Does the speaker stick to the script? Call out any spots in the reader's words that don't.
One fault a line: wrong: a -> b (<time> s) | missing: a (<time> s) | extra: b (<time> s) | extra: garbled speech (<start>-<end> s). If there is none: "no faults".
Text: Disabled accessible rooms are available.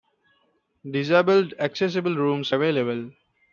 missing: are (2.5 s)